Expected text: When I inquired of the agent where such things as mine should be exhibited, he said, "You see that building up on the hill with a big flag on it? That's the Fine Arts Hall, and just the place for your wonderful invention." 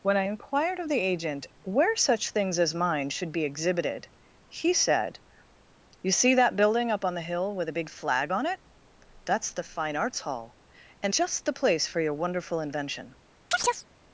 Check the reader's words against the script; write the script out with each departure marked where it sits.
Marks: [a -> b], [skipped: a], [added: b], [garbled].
When I inquired of the agent where such things as mine should be exhibited, he said, "You see that building up on the hill with a big flag on it? That's the Fine Arts Hall, and just the place for your wonderful invention."